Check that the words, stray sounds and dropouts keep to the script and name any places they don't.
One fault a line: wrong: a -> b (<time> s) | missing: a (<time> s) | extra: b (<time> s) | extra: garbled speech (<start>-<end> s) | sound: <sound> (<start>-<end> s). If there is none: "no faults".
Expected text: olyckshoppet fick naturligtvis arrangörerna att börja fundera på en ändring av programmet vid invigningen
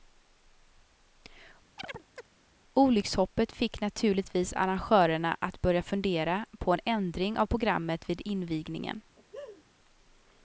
sound: chirp (1.8-2.3 s)
sound: laugh (9.2-9.6 s)